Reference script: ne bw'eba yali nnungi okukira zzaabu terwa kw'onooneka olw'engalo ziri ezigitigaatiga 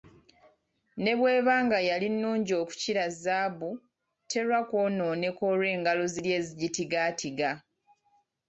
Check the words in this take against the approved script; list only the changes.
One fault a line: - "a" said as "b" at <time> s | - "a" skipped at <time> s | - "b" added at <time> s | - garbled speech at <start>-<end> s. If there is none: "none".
- "nga" added at 1.6 s